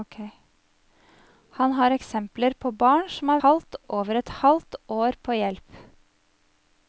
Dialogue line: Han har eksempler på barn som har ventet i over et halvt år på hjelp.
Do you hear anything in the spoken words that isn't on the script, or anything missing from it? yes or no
yes